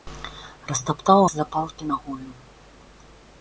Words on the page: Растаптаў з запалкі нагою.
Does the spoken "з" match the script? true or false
true